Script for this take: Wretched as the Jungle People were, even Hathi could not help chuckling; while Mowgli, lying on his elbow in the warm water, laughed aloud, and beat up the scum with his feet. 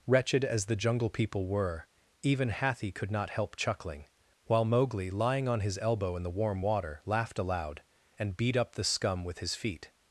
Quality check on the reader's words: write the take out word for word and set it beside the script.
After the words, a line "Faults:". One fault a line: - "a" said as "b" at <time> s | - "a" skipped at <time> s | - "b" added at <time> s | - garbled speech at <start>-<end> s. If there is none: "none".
Wretched as the Jungle People were, even Hathi could not help chuckling; while Mowgli, lying on his elbow in the warm water, laughed aloud, and beat up the scum with his feet.
Faults:
none